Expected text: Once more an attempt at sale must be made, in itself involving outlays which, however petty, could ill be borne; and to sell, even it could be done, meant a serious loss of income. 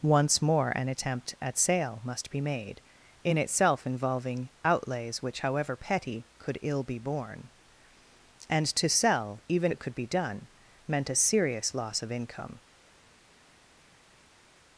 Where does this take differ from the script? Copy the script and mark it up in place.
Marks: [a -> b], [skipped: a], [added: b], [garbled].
Once more an attempt at sale must be made, in itself involving outlays which, however petty, could ill be borne; and to sell, even it could be done, meant a serious loss of income.